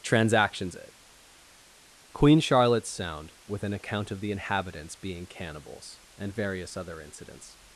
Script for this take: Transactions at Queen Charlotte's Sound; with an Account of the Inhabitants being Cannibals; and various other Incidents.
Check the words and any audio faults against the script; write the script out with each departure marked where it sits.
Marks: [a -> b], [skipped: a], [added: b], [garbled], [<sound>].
Transactions [at -> it] Queen Charlotte's Sound; with an Account of the Inhabitants being Cannibals; and various other Incidents.